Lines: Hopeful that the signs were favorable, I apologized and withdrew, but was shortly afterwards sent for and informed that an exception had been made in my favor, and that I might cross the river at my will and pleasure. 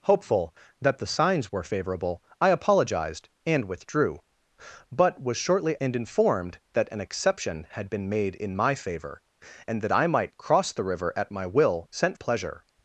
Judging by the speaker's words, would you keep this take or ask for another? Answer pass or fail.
fail